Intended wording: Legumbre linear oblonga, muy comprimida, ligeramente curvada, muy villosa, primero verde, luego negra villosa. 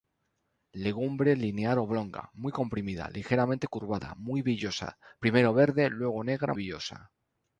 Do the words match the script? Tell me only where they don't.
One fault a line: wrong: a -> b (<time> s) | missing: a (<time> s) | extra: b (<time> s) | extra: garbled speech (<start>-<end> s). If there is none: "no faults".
no faults